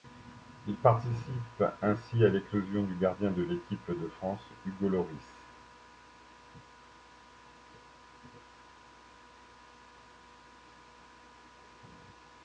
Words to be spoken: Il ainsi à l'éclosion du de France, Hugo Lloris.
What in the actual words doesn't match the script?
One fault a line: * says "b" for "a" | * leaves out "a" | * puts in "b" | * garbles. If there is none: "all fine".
* puts in "participe"
* puts in "gardien de l'équipe"